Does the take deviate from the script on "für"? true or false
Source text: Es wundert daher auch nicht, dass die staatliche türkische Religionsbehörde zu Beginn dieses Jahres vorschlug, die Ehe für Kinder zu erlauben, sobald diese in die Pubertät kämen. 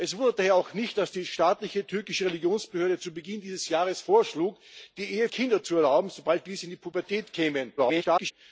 true